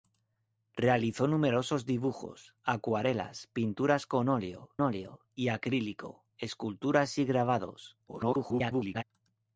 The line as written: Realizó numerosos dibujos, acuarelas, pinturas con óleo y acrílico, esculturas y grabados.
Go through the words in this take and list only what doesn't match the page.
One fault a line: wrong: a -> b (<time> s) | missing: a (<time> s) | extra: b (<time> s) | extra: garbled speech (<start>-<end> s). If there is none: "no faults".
extra: óleo (4.8 s)
extra: garbled speech (8.1-9.0 s)